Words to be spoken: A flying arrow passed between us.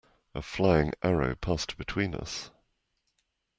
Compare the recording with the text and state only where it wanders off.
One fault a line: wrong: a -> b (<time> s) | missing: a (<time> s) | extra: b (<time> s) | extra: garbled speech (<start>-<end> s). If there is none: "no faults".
no faults